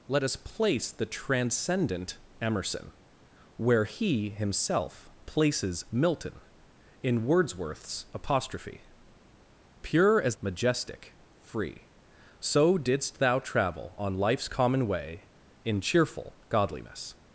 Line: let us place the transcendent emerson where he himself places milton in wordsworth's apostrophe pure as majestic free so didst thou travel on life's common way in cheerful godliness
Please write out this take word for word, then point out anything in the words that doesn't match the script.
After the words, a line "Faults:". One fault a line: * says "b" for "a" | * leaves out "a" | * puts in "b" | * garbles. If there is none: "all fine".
let us place the transcendent emerson where he himself places milton in wordsworth's apostrophe pure as majestic free so didst thou travel on life's common way in cheerful godliness
Faults:
all fine